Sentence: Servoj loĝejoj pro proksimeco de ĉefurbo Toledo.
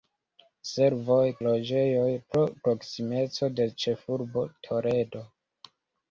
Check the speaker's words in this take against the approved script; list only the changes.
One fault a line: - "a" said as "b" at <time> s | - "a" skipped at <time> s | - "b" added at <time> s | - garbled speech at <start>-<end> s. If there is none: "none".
none